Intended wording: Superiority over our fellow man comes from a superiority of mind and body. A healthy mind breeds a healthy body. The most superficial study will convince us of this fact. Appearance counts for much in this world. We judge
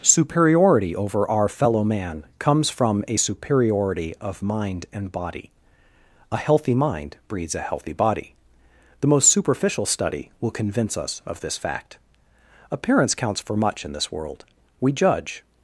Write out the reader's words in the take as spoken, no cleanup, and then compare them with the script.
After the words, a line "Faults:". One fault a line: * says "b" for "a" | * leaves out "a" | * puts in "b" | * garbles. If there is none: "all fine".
Superiority over our fellow man comes from a superiority of mind and body. A healthy mind breeds a healthy body. The most superficial study will convince us of this fact. Appearance counts for much in this world. We judge
Faults:
all fine